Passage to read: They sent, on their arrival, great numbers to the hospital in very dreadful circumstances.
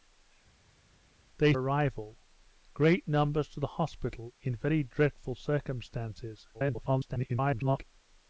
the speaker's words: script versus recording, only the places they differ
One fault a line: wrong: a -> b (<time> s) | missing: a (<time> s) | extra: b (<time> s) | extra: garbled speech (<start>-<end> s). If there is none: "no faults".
missing: sent on their (1.5 s)
extra: garbled speech (6.5-7.8 s)